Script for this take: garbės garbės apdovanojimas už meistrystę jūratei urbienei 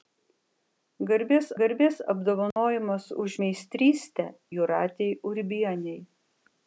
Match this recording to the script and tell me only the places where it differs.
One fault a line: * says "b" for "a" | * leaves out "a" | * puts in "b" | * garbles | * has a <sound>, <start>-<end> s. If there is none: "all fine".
* has a dropout, 2.5-2.6 s